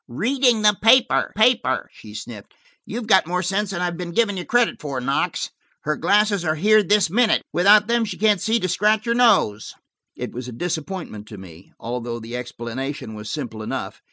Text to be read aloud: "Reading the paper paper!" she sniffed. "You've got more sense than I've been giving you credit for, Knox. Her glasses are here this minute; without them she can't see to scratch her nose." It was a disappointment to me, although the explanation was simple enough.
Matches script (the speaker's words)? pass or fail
pass